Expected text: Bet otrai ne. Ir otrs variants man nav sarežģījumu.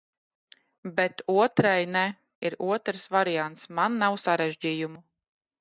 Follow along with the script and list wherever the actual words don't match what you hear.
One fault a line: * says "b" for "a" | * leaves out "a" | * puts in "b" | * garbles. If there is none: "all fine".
all fine